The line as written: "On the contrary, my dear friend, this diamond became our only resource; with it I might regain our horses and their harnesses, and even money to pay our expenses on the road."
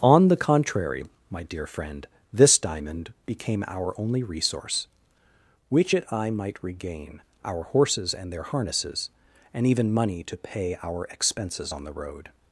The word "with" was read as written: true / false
false